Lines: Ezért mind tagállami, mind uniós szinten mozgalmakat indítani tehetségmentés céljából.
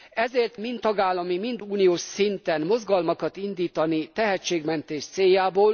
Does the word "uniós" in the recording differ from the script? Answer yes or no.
no